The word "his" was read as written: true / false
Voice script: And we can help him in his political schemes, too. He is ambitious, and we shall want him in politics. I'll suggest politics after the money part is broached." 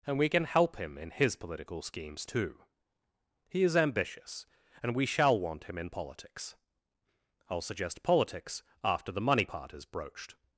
true